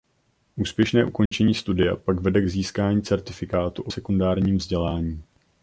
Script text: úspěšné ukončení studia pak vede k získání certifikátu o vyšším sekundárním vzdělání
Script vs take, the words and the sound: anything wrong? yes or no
yes